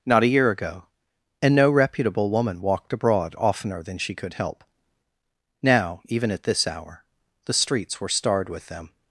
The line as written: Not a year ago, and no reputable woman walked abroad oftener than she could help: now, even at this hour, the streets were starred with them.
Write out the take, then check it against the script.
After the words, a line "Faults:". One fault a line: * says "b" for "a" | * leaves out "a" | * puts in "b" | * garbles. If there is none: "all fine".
Not a year ago, and no reputable woman walked abroad oftener than she could help: now, even at this hour, the streets were starred with them.
Faults:
all fine